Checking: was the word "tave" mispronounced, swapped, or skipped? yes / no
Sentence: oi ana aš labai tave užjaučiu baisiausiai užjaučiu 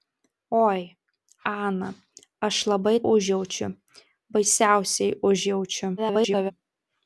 yes